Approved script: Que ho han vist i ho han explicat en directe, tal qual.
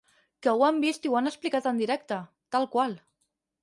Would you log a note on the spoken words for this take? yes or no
no